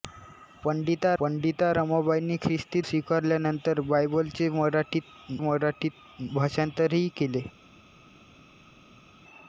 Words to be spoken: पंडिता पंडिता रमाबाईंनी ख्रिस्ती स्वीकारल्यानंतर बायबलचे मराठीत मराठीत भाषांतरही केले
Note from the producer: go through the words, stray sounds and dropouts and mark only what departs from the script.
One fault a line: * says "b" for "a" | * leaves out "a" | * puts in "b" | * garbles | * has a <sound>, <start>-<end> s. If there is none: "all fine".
all fine